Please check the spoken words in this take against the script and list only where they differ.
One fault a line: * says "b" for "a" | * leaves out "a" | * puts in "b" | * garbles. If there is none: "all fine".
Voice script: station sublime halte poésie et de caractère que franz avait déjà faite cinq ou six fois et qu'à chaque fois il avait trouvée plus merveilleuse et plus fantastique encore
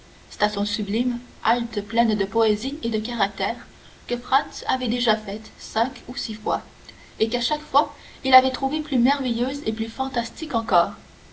* puts in "pleine de"